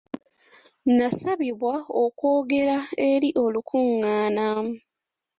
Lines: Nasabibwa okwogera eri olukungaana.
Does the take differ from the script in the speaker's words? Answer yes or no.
no